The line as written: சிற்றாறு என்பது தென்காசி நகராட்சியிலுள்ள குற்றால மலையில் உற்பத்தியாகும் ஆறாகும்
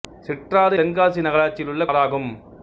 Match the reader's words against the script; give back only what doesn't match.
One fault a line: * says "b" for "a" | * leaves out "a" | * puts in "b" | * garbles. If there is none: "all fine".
* leaves out "என்பது"
* leaves out "குற்றால மலையில் உற்பத்தியாகும்"